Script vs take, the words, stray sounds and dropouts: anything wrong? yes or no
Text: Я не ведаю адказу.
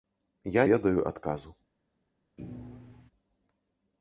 yes